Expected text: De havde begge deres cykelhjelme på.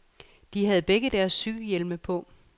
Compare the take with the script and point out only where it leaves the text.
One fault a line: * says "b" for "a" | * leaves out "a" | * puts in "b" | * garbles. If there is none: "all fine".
all fine